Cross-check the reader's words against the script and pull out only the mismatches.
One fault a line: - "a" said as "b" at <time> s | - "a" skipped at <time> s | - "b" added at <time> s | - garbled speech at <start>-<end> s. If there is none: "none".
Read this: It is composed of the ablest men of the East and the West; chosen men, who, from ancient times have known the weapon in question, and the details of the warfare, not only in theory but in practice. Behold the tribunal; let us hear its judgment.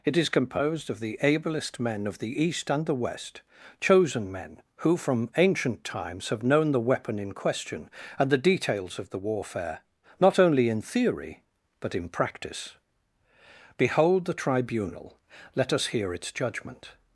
none